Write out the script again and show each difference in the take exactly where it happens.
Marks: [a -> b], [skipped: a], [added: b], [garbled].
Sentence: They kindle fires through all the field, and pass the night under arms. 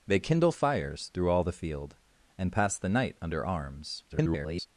They kindle fires through all the field, and pass the night under arms. [garbled]